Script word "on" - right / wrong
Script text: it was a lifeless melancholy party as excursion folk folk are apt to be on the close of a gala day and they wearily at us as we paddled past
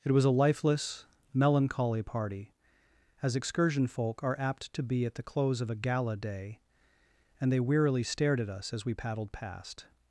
wrong